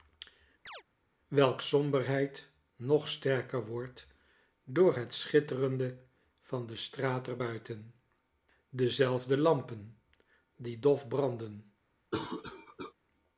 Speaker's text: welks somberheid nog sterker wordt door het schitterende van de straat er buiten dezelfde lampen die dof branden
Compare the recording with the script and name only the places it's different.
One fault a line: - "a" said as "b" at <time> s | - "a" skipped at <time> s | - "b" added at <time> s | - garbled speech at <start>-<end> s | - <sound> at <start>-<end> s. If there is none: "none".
- chirp at 0.7-0.8 s
- cough at 12.1-12.9 s